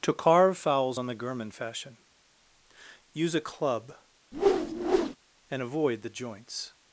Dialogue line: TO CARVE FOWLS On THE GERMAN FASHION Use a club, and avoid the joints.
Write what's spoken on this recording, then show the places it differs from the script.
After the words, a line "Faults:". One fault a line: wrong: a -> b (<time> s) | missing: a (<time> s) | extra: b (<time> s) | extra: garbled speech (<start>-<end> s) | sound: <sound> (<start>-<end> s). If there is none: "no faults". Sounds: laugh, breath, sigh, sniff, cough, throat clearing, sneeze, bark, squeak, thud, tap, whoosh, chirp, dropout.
TO CARVE FOWLS On THE GERMAN FASHION Use a club, and avoid the joints.
Faults:
sound: whoosh (4.3-5.2 s)